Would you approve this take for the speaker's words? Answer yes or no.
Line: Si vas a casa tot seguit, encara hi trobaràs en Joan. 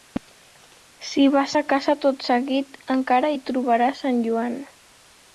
yes